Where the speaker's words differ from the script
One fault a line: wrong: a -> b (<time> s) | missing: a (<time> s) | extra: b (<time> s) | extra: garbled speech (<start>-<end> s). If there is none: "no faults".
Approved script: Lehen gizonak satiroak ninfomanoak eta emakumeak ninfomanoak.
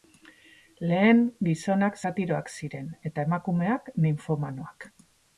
wrong: ninfomanoak -> ziren (2.6 s)